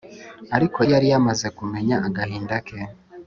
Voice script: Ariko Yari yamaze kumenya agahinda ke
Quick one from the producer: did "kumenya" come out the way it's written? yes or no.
yes